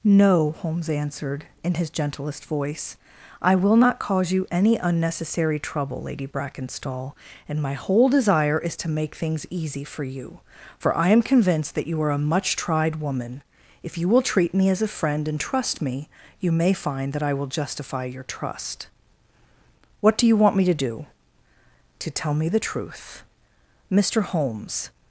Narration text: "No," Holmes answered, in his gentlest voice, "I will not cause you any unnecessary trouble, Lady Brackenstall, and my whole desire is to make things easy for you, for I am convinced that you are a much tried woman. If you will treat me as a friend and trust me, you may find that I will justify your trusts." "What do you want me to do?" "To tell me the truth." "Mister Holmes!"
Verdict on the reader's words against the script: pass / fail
fail